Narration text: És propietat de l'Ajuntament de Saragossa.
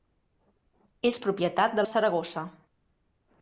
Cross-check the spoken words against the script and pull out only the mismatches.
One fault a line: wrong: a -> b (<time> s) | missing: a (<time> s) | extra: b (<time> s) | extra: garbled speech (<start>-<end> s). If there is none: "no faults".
missing: l'Ajuntament (1.9 s)